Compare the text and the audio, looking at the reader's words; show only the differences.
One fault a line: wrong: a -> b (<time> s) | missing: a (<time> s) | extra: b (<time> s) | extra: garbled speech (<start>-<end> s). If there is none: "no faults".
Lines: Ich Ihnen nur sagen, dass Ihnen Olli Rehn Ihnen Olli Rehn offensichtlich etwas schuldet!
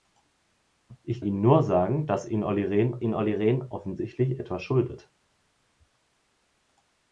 no faults